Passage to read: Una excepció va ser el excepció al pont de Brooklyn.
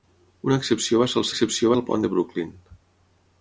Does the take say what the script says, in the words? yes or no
yes